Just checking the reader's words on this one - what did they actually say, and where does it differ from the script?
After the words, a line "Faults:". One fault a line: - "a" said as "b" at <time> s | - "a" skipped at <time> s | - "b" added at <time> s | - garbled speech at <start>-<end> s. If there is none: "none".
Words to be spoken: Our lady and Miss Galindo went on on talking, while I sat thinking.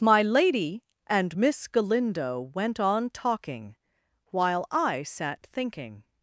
My lady and Miss Galindo went on talking, while I sat thinking.
Faults:
- "Our" said as "My" at 0.0 s
- "on" skipped at 3.1 s